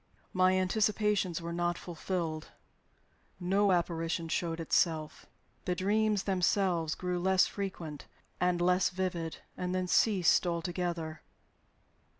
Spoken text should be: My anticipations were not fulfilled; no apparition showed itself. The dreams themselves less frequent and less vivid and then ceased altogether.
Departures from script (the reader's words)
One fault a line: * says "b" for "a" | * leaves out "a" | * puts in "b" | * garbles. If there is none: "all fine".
* puts in "grew"